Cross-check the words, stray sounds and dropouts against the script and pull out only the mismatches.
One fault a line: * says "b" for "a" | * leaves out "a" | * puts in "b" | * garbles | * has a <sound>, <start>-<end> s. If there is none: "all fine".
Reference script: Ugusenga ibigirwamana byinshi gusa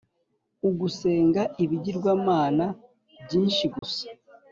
* has a dropout, 3.8-3.8 s